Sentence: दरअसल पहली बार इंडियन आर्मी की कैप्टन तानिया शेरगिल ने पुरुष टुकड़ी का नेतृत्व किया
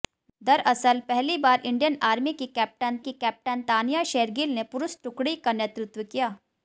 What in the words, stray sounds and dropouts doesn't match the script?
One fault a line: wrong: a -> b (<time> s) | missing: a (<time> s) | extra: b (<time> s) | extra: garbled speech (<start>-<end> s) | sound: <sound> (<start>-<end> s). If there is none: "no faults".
extra: की कैप्टन (3.0 s)